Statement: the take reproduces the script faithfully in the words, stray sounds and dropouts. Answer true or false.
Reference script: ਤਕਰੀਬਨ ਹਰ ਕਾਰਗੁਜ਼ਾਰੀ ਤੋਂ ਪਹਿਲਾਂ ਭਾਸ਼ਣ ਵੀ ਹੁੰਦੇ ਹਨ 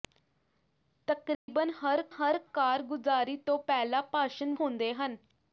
false